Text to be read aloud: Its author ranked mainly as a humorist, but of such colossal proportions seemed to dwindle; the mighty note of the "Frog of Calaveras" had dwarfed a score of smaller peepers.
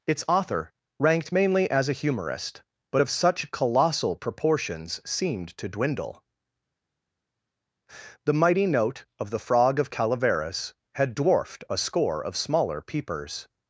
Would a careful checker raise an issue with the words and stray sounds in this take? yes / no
no